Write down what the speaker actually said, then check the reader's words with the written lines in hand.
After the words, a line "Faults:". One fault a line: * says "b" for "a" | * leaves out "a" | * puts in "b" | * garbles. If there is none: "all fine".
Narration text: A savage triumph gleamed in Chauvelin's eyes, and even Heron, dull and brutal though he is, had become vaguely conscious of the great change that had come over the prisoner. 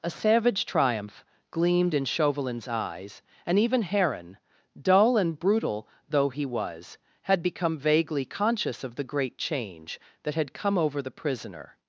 A savage triumph gleamed in Chauvelin's eyes, and even Heron, dull and brutal though he was, had become vaguely conscious of the great change that had come over the prisoner.
Faults:
* says "was" for "is"